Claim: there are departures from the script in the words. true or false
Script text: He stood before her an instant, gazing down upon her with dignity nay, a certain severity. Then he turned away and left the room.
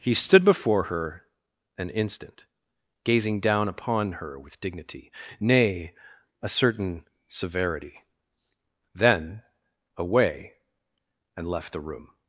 true